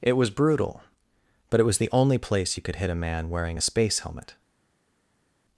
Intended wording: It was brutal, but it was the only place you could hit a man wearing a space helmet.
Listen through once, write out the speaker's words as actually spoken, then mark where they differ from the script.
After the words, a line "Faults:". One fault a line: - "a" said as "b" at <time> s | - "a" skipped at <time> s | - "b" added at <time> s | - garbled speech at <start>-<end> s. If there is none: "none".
It was brutal, but it was the only place you could hit a man wearing a space helmet.
Faults:
none